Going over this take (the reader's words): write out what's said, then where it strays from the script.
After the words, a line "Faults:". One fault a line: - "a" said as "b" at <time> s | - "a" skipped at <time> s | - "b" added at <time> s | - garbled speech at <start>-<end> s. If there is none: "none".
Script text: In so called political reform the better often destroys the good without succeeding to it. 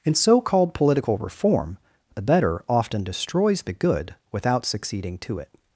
In so called political reform the better often destroys the good without succeeding to it.
Faults:
none